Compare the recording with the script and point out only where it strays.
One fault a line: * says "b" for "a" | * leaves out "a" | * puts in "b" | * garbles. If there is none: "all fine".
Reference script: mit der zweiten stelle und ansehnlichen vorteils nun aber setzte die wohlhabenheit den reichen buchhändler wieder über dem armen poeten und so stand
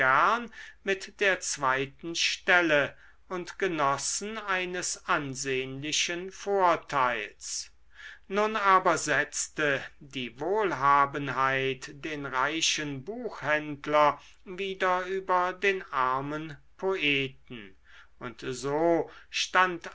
* puts in "genossen eines"
* says "den" for "dem"